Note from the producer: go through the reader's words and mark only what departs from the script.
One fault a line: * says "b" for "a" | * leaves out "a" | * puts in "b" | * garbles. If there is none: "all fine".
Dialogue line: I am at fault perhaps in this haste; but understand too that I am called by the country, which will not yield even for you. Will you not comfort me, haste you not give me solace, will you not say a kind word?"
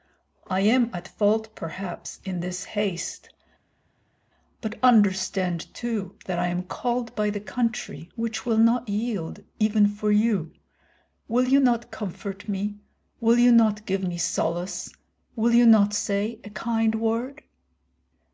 * says "will" for "haste"